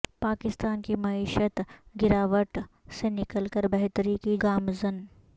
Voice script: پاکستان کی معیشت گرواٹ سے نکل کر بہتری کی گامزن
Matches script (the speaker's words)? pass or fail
pass